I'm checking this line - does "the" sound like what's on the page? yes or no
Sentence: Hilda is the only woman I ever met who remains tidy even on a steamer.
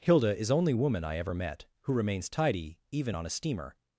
no